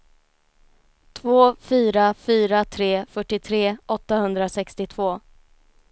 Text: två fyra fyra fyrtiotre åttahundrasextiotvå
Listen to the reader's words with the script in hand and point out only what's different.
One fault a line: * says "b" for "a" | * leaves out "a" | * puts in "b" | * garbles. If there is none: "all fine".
* puts in "tre"